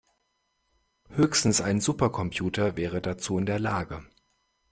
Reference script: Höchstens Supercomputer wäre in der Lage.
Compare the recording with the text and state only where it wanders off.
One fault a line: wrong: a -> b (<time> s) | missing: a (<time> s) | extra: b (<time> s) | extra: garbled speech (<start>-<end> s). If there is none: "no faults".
extra: ein (1.6 s)
extra: dazu (3.0 s)